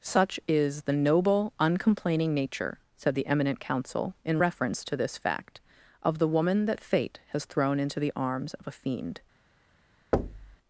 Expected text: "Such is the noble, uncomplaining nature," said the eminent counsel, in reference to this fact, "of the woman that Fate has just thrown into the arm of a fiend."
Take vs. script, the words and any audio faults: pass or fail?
fail